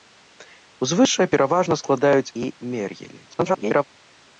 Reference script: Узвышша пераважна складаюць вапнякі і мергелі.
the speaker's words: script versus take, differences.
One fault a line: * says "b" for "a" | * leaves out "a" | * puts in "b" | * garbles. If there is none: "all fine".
* leaves out "вапнякі"
* garbles